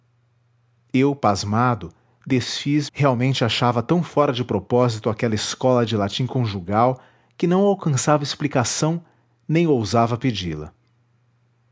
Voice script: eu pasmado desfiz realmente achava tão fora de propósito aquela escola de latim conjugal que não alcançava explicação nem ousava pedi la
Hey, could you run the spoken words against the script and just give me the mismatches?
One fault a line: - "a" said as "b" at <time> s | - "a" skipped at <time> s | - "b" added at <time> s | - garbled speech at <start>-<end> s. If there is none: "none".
none